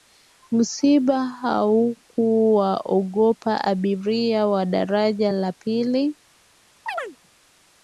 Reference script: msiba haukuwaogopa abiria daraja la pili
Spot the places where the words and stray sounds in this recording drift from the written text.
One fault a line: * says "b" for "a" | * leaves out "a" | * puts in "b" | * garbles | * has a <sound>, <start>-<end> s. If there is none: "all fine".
* puts in "wa"
* has a chirp, 6.9-7.2 s